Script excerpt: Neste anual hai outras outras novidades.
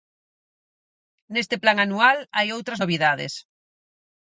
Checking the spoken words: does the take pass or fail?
fail